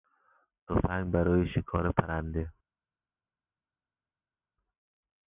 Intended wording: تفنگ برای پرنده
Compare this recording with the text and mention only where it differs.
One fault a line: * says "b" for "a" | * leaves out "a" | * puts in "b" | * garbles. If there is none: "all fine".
* puts in "شکار"